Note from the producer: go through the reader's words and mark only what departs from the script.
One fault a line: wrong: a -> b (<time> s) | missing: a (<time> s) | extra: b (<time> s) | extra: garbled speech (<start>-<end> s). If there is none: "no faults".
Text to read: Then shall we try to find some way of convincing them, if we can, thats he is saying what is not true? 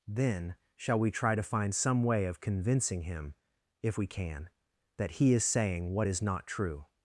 wrong: them -> him (3.0 s)
wrong: thats -> that (5.0 s)